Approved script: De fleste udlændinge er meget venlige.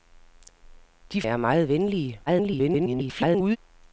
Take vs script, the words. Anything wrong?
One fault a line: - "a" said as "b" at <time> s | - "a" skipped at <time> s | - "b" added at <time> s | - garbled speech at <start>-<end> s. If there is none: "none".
- "fleste udlændinge" skipped at 1.2 s
- garbled speech at 2.3-3.6 s